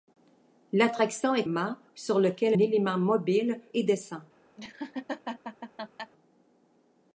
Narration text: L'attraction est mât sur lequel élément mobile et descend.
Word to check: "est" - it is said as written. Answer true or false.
true